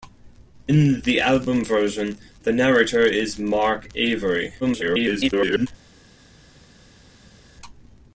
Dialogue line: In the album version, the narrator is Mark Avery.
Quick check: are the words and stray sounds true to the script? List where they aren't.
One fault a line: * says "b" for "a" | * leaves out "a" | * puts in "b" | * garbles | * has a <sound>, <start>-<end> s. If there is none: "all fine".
* garbles